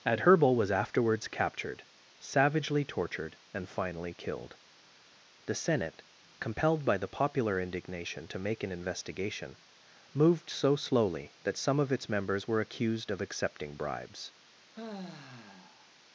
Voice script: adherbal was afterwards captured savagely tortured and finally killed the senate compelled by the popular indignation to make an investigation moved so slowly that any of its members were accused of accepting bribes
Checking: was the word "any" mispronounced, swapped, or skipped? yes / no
yes